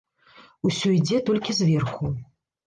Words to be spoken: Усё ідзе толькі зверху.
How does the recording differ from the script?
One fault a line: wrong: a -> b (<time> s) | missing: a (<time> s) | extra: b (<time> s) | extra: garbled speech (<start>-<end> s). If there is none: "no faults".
no faults